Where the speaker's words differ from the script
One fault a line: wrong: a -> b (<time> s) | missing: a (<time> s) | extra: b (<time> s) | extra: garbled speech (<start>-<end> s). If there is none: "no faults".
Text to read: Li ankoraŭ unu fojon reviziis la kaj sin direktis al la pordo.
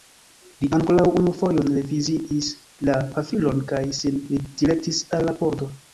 extra: pafilon (3.1 s)